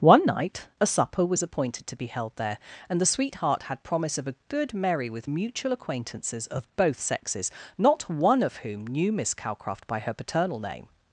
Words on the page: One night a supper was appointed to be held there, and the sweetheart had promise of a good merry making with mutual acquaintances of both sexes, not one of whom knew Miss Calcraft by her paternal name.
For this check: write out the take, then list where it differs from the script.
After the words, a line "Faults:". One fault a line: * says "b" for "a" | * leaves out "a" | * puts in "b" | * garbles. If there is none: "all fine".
One night a supper was appointed to be held there, and the sweetheart had promise of a good merry with mutual acquaintances of both sexes, not one of whom knew Miss Calcraft by her paternal name.
Faults:
* leaves out "making"